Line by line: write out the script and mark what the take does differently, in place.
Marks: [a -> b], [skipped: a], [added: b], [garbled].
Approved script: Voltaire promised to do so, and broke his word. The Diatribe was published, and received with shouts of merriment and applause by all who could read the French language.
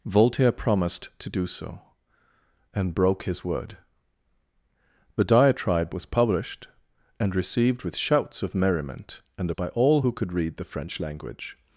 Voltaire promised to do so, and broke his word. The Diatribe was published, and received with shouts of merriment and [skipped: applause] by all who could read the French language.